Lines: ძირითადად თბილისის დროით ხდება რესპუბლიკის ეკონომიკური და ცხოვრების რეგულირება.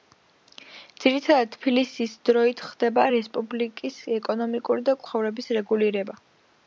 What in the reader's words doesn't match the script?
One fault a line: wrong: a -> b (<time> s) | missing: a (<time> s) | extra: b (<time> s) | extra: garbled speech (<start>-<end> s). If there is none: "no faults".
no faults